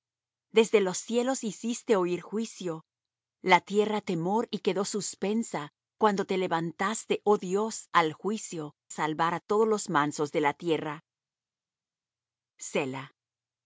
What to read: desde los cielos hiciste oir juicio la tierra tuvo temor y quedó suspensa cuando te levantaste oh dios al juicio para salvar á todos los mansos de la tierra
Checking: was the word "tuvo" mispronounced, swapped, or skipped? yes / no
yes